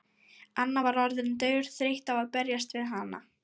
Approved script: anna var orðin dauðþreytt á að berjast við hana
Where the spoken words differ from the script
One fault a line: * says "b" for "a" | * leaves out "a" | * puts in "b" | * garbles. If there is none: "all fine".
all fine